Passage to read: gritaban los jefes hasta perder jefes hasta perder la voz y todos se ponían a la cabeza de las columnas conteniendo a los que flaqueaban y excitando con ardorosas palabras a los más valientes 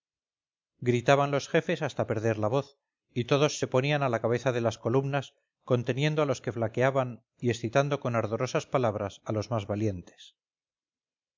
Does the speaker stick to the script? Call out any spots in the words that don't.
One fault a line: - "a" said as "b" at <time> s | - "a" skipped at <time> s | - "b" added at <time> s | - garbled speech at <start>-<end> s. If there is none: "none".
- "jefes hasta perder" skipped at 2.4 s